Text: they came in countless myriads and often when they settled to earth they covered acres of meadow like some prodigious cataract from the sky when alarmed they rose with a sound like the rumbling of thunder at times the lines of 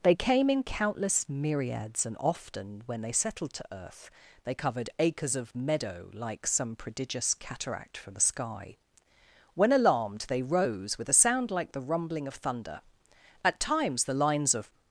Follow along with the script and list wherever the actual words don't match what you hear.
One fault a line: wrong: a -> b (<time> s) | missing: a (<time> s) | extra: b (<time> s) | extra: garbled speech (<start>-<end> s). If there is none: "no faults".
no faults